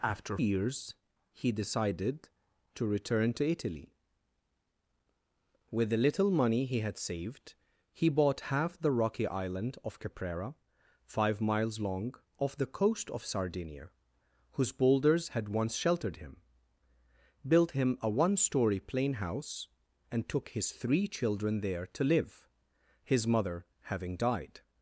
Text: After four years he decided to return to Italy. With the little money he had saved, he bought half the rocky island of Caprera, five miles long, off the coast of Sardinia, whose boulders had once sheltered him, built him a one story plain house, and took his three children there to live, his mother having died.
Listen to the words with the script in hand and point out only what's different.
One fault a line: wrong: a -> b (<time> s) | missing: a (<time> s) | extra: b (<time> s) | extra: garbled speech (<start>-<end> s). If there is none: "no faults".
missing: four (0.4 s)